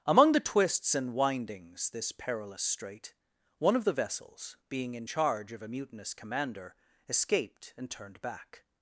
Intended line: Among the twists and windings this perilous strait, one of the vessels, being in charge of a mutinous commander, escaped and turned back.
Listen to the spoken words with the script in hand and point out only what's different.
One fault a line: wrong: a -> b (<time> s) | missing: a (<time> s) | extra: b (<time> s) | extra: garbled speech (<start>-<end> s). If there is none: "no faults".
no faults